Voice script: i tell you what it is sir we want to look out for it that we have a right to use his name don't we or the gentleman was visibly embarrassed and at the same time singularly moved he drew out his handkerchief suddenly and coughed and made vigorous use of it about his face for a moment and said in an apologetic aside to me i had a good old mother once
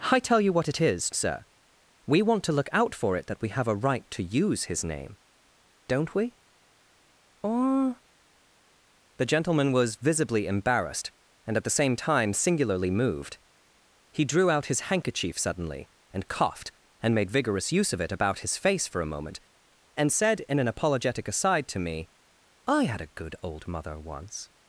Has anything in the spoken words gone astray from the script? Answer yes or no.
no